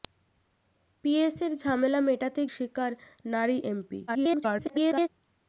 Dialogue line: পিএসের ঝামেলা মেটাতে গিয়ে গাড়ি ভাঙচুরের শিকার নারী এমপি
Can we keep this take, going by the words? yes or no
no